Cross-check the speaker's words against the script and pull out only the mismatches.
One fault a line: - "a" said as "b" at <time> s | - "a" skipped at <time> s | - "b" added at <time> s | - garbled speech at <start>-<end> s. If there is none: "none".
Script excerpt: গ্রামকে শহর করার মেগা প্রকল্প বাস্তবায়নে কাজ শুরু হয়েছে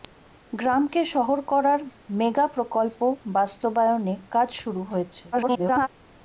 - garbled speech at 5.3-5.9 s